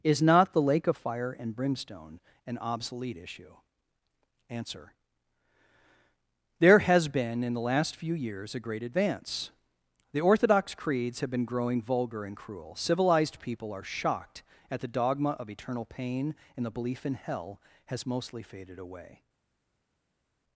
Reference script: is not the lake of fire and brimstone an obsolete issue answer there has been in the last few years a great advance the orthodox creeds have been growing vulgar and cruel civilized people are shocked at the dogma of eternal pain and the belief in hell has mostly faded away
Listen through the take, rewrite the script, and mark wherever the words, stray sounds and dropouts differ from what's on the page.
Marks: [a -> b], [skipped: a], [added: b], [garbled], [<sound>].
is not the lake of fire and brimstone an obsolete issue answer there has been in the last few years a great advance the orthodox creeds have been growing vulgar and cruel civilized people are shocked at the dogma of eternal pain and the belief in hell has mostly faded away